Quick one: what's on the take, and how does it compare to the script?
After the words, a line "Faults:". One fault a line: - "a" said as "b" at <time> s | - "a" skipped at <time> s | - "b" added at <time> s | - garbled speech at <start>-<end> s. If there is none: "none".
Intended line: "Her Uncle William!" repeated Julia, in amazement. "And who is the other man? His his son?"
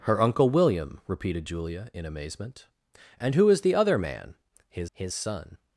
"Her Uncle William!" repeated Julia, in amazement. "And who is the other man? His his son?"
Faults:
none